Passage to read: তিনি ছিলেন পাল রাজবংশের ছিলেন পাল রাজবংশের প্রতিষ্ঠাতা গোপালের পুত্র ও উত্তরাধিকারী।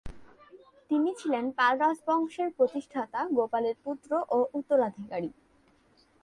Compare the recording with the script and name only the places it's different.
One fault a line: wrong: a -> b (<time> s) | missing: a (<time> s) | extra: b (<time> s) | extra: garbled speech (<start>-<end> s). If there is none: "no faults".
missing: ছিলেন পাল রাজবংশের (2.5 s)